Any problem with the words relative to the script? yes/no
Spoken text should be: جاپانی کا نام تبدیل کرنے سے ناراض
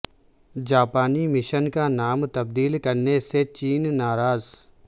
yes